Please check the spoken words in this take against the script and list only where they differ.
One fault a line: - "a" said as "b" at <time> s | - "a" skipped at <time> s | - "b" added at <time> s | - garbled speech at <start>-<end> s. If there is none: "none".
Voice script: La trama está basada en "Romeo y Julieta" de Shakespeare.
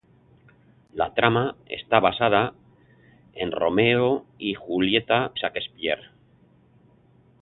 - "de" skipped at 5.3 s